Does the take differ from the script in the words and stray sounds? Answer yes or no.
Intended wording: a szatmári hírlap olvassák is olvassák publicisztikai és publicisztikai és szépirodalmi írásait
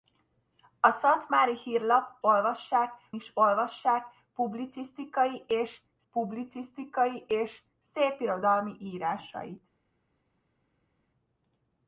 no